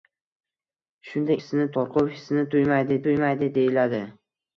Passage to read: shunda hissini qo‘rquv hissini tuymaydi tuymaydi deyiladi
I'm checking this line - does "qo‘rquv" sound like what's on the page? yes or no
yes